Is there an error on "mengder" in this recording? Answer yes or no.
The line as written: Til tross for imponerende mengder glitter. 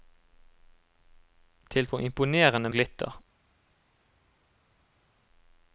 yes